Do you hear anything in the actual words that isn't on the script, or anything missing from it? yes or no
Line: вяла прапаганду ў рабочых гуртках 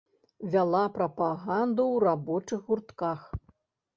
no